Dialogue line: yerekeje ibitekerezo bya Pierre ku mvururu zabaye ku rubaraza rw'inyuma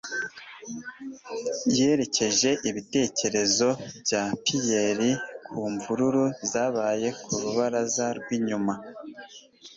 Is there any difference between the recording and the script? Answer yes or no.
no